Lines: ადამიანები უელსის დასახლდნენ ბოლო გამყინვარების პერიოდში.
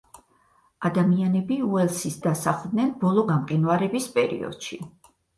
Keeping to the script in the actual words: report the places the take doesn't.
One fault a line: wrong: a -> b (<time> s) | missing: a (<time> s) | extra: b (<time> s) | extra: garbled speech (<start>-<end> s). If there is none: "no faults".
no faults